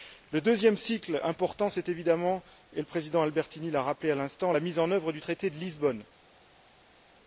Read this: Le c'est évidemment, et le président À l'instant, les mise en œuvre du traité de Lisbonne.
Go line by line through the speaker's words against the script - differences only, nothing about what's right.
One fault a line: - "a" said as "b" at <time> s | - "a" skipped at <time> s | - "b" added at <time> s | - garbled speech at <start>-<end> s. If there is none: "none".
- "deuxième cycle important" added at 0.4 s
- "Albertini l'a rappelé" added at 3.2 s
- "les" said as "la" at 4.5 s